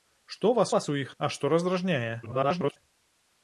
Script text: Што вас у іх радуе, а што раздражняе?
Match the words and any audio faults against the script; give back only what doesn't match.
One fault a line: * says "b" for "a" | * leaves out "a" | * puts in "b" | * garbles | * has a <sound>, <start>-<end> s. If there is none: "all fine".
* puts in "вас"
* leaves out "радуе"
* garbles